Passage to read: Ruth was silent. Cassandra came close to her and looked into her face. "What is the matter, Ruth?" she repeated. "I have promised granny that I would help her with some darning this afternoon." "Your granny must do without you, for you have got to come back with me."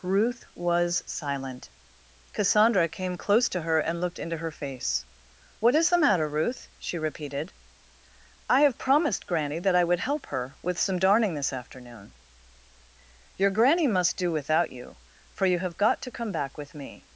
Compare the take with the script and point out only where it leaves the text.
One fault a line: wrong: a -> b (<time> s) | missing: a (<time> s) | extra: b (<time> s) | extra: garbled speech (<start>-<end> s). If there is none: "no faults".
no faults